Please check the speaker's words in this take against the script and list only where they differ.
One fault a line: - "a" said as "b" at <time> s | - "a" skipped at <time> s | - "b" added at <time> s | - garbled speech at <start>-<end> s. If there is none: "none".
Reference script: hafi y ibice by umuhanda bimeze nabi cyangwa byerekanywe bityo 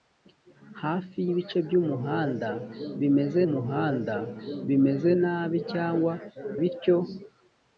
- "umuhanda bimeze" added at 3.5 s
- "byerekanywe" skipped at 6.1 s